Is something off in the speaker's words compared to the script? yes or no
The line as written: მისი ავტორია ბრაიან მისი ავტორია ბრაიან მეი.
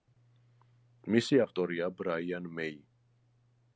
yes